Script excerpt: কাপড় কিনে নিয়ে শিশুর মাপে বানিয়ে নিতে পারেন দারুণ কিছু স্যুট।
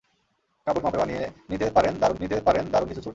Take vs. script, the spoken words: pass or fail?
fail